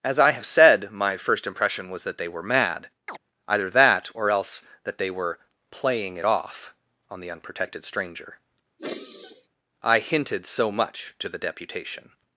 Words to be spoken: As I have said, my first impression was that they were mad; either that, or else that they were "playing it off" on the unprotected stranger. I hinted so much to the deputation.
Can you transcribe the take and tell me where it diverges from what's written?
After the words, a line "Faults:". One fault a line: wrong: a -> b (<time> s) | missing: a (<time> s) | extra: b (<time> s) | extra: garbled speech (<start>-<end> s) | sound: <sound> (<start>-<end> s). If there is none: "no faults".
As I have said, my first impression was that they were mad; either that, or else that they were "playing it off" on the unprotected stranger. I hinted so much to the deputation.
Faults:
sound: chirp (3.1-3.2 s)
sound: sigh (8.8-9.5 s)